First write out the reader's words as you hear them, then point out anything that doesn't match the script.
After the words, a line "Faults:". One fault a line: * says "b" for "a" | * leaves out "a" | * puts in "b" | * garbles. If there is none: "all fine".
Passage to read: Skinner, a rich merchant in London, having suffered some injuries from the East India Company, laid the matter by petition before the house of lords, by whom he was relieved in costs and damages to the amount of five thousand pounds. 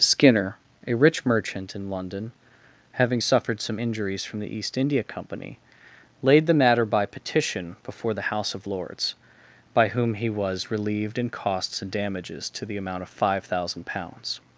Skinner, a rich merchant in London, having suffered some injuries from the East India Company, laid the matter by petition before the house of lords, by whom he was relieved in costs and damages to the amount of five thousand pounds.
Faults:
all fine